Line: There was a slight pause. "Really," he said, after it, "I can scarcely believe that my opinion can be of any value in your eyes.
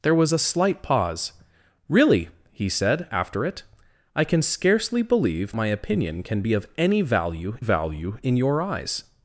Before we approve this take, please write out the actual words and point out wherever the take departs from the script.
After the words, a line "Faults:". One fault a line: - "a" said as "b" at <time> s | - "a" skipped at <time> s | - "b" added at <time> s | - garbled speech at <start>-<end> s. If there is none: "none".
There was a slight pause. "Really," he said, after it, "I can scarcely believe my opinion can be of any value value in your eyes.
Faults:
- "that" skipped at 5.5 s
- "value" added at 7.6 s